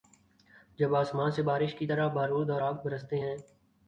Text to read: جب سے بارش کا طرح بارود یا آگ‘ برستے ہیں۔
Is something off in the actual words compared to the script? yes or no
yes